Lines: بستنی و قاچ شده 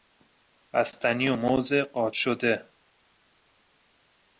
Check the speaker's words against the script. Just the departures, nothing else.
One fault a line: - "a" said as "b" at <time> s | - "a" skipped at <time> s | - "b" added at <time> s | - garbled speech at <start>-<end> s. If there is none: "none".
- "موز" added at 1.4 s